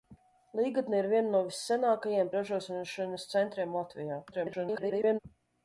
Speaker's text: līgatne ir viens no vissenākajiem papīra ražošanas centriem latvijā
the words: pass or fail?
fail